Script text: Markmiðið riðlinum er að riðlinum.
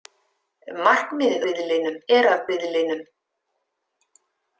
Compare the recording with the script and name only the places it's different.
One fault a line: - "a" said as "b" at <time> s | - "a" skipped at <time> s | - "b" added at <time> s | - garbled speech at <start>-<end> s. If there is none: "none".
none